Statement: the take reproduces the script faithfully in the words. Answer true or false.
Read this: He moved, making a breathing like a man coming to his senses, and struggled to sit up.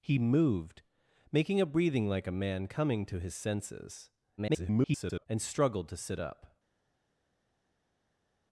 false